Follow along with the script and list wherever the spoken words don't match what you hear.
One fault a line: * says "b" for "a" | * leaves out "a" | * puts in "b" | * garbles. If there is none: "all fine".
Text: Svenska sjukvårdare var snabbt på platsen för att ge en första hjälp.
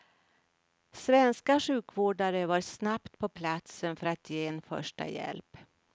all fine